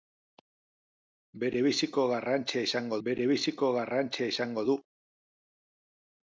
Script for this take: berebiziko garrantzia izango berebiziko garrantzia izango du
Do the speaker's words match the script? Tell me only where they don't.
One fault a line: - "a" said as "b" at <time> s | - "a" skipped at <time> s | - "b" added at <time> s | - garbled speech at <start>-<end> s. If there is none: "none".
none